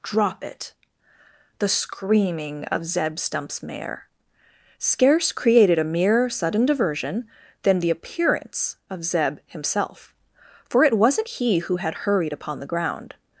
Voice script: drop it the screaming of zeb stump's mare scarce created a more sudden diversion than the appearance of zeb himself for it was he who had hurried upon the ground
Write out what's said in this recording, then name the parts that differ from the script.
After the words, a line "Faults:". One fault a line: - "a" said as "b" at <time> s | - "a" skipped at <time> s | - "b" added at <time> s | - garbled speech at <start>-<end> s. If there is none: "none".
drop it the screaming of zeb stump's mare scarce created a mere sudden diversion than the appearance of zeb himself for it wasn't he who had hurried upon the ground
Faults:
- "more" said as "mere" at 5.8 s
- "was" said as "wasn't" at 11.0 s